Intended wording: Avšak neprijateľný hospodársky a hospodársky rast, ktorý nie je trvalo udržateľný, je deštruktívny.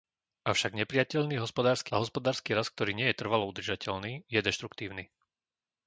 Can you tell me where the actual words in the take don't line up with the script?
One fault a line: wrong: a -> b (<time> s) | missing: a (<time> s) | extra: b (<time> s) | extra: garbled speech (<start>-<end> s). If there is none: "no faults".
no faults